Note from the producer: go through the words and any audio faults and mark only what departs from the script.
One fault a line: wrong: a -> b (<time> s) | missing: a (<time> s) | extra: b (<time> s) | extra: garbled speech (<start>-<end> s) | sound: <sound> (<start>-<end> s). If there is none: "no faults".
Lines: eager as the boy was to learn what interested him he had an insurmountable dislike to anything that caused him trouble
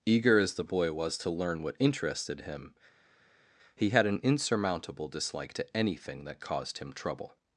no faults